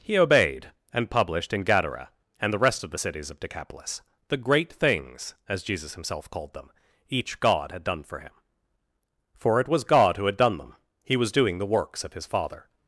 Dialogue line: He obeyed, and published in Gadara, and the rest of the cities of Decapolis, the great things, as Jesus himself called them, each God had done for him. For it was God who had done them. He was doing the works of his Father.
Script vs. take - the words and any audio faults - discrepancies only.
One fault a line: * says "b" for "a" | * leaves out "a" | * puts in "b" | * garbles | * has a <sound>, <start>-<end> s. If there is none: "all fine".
all fine